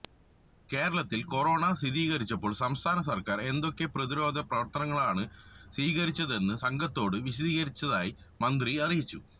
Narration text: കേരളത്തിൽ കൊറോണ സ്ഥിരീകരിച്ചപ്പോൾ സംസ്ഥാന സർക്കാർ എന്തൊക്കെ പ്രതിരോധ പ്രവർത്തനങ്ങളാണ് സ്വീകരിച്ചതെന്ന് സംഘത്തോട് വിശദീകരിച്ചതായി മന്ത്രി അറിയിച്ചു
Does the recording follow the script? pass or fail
pass